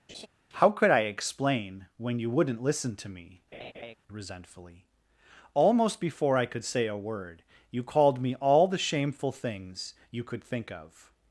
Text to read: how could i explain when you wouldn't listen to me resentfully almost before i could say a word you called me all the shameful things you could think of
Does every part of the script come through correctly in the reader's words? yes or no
yes